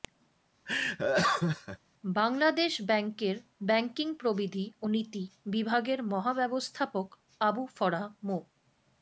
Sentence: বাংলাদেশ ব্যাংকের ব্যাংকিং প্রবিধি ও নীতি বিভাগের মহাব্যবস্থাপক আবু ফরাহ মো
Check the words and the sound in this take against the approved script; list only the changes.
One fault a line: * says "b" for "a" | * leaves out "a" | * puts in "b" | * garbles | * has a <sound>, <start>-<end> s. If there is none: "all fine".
* has a laugh, 0.7-1.8 s